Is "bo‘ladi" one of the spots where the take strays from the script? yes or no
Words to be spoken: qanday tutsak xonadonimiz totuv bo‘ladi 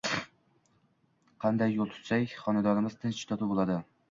no